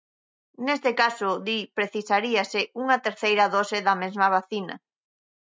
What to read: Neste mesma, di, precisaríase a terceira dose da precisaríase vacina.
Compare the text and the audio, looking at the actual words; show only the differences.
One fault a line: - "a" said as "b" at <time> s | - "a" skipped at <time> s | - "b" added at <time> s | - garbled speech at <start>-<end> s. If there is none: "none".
- "mesma" said as "caso" at 1.0 s
- "a" said as "unha" at 2.8 s
- "precisaríase" said as "mesma" at 4.0 s